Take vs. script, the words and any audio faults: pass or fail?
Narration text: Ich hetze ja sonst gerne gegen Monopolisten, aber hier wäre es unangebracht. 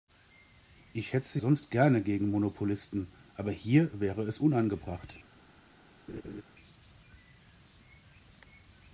fail